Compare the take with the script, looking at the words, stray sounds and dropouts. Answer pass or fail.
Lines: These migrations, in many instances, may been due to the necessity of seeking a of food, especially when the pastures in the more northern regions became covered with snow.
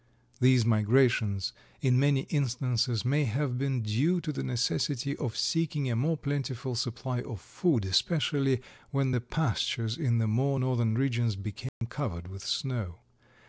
fail